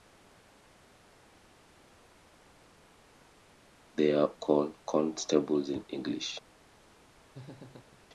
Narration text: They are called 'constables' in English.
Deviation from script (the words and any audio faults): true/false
true